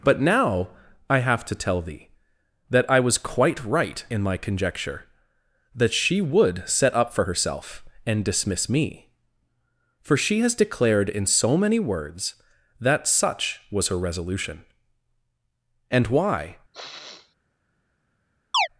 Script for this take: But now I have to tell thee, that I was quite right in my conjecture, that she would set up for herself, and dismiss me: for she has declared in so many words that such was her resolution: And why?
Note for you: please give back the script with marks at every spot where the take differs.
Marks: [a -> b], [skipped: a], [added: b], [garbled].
But now I have to tell thee, that I was quite right in my conjecture, that she would set up for herself, and dismiss me: for she has declared in so many words that such was her resolution: And why?